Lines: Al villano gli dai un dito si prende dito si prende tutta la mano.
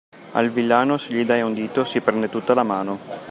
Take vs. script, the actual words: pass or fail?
fail